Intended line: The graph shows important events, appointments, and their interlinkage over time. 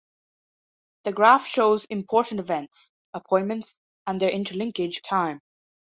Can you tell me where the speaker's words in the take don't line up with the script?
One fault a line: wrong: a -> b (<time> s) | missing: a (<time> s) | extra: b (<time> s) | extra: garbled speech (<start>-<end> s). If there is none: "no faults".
missing: over (5.0 s)